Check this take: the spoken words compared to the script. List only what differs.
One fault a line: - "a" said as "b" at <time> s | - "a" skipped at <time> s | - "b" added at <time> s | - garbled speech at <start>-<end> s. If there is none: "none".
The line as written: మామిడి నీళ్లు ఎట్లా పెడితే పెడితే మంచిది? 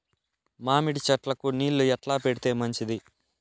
- "చెట్లకు" added at 1.1 s
- "పెడితే" skipped at 2.5 s